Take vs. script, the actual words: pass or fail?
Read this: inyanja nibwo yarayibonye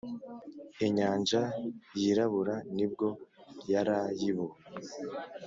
fail